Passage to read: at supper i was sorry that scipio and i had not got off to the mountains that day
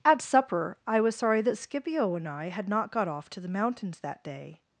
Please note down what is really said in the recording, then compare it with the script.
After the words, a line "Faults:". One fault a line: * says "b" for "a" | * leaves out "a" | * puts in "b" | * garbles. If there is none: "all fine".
at supper i was sorry that scipio and i had not got off to the mountains that day
Faults:
all fine